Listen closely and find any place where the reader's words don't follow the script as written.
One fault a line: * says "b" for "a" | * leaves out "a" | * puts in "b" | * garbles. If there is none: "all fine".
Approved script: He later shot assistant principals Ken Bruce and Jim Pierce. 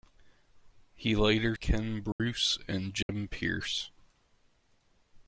* leaves out "shot assistant principals"